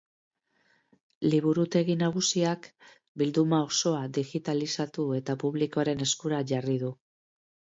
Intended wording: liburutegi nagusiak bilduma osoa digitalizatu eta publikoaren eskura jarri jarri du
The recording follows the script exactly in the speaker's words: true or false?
false